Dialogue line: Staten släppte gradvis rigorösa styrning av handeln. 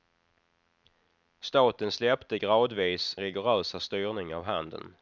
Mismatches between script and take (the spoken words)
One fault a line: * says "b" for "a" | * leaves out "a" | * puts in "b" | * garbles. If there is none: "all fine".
all fine